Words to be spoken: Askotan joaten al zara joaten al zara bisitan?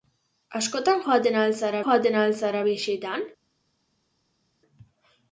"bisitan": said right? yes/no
yes